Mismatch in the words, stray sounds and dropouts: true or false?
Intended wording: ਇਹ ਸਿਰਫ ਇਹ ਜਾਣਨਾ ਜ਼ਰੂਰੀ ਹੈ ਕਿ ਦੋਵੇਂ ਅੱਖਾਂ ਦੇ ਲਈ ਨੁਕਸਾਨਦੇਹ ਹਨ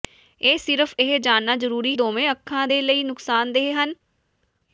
true